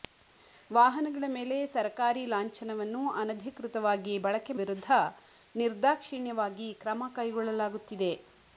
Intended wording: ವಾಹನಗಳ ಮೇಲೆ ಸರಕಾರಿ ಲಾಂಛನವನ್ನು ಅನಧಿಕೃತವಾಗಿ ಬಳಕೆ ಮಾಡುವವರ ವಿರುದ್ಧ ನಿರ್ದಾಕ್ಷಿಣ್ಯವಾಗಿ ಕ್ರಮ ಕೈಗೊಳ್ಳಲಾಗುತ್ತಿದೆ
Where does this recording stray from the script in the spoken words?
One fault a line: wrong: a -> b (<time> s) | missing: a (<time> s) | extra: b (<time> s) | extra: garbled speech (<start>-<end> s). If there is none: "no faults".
missing: ಮಾಡುವವರ (4.5 s)